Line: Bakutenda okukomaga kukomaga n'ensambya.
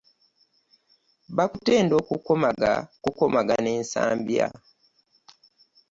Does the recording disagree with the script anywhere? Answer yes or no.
no